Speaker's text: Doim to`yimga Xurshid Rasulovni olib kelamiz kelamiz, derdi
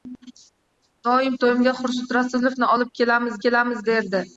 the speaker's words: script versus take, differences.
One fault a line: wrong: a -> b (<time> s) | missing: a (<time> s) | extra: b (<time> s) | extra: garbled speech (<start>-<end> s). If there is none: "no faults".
no faults